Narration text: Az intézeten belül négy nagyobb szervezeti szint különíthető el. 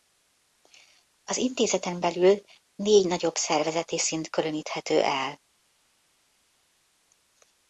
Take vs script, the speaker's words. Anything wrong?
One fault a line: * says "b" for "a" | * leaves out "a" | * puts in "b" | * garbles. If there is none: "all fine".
all fine